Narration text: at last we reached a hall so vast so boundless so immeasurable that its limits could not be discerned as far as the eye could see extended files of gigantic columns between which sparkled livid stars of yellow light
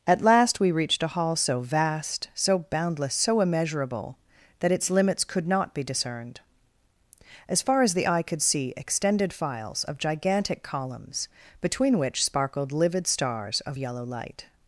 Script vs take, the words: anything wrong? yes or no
no